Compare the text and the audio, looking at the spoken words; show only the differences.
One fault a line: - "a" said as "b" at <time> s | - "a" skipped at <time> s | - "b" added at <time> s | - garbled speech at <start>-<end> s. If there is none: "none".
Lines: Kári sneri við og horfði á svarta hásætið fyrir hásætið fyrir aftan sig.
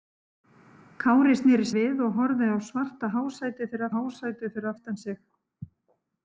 none